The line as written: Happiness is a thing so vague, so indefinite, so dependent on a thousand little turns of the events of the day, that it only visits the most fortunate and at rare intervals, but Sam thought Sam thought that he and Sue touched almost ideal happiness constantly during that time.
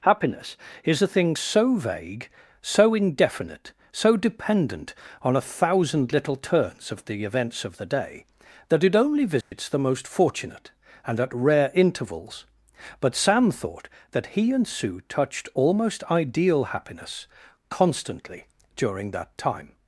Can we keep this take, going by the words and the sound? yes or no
no